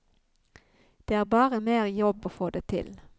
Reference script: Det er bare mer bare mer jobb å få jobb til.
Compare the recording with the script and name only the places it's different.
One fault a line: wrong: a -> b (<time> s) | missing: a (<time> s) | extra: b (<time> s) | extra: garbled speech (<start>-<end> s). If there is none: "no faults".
missing: bare mer (1.9 s)
wrong: jobb -> det (2.5 s)